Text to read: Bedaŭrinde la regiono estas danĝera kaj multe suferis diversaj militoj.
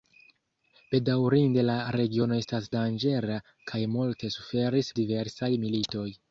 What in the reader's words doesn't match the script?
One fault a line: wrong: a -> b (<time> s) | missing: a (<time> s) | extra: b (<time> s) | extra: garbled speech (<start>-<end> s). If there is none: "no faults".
no faults